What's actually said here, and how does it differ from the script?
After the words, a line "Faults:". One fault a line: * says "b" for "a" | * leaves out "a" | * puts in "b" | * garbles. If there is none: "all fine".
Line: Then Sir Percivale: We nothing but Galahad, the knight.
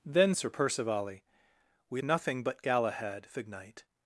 Then Sir Percivale: We nothing but Galahad, the knight.
Faults:
all fine